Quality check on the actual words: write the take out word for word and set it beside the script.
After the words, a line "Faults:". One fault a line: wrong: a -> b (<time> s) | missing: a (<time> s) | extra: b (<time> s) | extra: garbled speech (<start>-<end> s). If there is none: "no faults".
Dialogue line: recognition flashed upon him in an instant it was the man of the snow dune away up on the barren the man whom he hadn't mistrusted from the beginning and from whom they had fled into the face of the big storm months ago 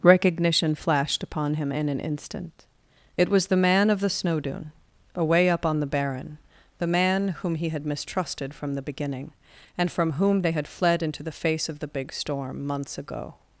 recognition flashed upon him in an instant it was the man of the snow dune away up on the barren the man whom he had mistrusted from the beginning and from whom they had fled into the face of the big storm months ago
Faults:
wrong: hadn't -> had (7.7 s)